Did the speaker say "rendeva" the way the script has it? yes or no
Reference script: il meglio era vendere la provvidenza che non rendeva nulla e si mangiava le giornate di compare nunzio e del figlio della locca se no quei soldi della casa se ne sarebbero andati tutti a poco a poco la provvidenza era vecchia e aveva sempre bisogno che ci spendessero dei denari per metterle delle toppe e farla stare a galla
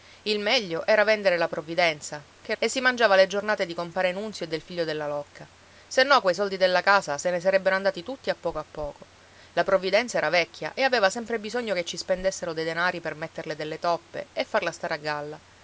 no